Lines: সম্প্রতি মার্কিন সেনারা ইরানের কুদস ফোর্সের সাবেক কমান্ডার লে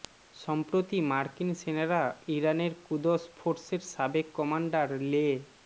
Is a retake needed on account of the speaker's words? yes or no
no